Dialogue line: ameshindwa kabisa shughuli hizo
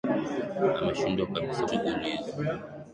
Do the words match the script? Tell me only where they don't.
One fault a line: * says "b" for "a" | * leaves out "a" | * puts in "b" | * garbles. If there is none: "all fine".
all fine